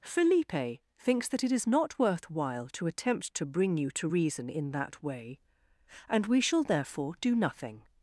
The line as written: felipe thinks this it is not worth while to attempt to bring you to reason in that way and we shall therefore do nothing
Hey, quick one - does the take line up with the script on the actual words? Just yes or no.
no